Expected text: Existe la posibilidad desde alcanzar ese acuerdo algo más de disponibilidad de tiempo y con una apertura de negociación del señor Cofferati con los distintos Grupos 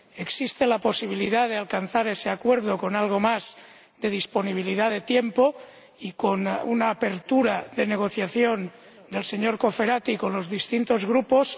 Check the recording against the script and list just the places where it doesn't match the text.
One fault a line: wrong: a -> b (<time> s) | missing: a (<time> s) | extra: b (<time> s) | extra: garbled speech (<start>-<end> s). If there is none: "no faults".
wrong: desde -> de (1.5 s)
extra: con (2.8 s)